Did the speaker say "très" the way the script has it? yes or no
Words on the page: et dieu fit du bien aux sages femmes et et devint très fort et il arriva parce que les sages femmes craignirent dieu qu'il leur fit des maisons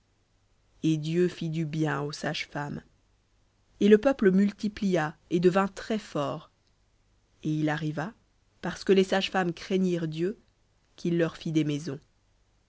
yes